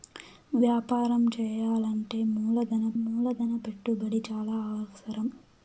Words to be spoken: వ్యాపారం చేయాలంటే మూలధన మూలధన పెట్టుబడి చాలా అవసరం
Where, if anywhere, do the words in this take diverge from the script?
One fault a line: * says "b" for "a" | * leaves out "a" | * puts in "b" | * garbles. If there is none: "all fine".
all fine